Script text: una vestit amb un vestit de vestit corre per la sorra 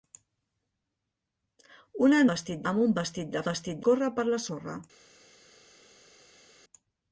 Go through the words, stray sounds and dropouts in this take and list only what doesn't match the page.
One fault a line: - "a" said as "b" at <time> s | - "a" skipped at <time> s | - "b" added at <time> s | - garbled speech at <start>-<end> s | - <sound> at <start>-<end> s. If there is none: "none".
none